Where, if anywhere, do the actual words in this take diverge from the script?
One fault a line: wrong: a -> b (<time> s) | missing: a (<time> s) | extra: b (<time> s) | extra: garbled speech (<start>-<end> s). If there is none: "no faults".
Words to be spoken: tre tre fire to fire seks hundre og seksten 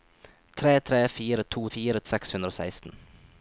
no faults